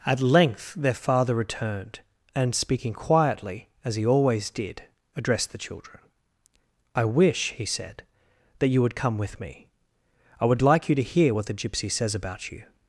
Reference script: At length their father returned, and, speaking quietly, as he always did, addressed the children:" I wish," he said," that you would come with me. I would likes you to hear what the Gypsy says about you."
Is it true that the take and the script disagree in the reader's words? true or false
true